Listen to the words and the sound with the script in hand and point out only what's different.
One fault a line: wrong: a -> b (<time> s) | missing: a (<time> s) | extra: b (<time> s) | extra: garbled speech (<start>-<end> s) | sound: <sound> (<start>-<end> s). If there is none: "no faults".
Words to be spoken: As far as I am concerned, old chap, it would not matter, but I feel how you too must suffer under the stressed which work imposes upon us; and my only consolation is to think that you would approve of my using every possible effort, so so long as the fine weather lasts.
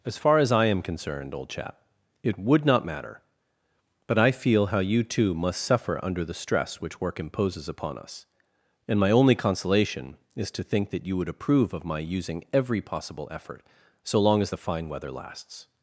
wrong: stressed -> stress (6.3 s)
missing: so (14.2 s)